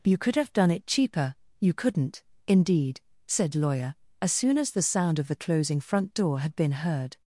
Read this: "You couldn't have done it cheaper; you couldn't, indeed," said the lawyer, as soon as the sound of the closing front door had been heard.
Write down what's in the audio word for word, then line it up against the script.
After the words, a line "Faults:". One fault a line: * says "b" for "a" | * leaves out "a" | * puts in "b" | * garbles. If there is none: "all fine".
"You could have done it cheaper; you couldn't, indeed," said lawyer, as soon as the sound of the closing front door had been heard.
Faults:
* says "could" for "couldn't"
* leaves out "the"